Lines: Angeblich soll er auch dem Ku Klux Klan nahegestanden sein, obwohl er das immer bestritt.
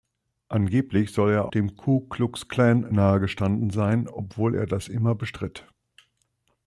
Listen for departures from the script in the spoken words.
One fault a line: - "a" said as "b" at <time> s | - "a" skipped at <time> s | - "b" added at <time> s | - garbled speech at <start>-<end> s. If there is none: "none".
- "auch" skipped at 1.5 s